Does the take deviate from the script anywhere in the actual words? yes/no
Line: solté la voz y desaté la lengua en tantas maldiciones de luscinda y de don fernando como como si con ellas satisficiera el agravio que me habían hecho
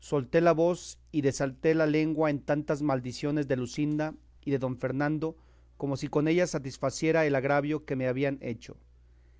yes